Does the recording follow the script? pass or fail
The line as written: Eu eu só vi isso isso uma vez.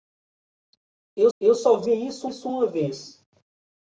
pass